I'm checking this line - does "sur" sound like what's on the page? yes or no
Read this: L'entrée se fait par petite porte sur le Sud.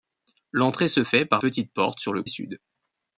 yes